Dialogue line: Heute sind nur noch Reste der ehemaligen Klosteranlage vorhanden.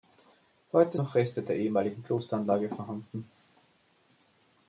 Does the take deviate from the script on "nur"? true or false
true